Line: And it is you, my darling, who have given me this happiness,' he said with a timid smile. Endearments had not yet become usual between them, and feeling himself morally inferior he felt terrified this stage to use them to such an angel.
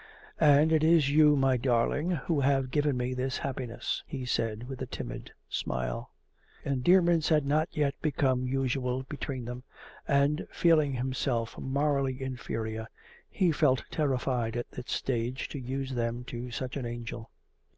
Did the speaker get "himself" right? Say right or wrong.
right